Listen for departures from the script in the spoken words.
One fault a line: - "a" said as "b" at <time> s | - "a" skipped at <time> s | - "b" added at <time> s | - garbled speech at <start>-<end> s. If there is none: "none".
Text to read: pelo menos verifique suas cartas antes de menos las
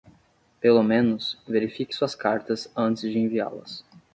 - "menos" said as "enviá" at 3.2 s